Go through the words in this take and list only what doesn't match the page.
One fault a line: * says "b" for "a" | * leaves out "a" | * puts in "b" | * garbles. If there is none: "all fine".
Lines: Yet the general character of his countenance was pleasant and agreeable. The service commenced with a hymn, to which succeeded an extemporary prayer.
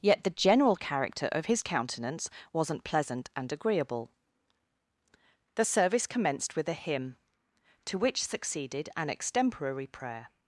* says "wasn't" for "was"